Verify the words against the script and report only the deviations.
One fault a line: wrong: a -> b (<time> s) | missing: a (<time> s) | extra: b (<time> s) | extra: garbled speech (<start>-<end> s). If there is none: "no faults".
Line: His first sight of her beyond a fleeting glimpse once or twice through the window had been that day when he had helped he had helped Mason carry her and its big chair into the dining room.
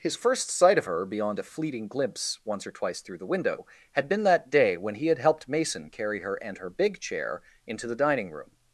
missing: he had helped (5.5 s)
wrong: its -> her (6.6 s)